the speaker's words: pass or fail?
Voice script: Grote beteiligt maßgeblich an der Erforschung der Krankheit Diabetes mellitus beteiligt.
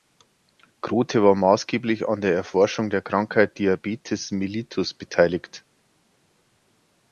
fail